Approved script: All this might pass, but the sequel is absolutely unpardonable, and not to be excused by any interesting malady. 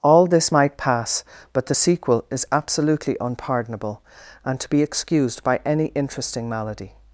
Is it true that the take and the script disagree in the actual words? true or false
true